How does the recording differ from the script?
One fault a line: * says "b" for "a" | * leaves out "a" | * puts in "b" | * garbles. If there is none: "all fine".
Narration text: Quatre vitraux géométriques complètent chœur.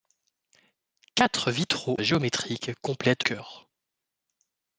all fine